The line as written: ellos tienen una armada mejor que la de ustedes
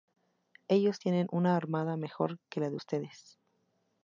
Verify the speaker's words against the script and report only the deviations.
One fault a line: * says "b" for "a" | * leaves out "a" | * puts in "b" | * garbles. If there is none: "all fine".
all fine